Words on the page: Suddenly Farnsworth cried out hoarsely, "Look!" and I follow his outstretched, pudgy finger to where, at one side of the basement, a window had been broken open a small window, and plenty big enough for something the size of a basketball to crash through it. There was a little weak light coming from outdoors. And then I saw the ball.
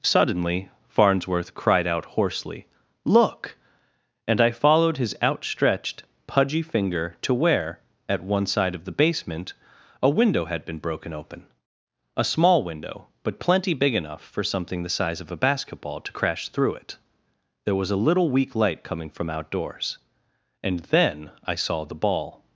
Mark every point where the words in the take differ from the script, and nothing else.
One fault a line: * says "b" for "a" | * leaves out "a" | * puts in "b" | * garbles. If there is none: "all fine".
* says "followed" for "follow"
* says "but" for "and"